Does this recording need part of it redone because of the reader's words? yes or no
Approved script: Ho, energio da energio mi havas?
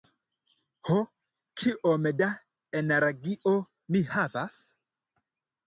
yes